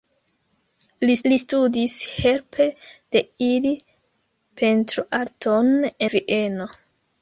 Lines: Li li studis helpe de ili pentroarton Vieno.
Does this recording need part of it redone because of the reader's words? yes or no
no